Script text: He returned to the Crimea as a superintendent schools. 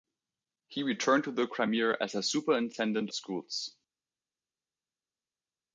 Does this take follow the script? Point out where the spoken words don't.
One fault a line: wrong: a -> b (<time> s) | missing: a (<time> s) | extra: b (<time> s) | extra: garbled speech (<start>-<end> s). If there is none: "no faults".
no faults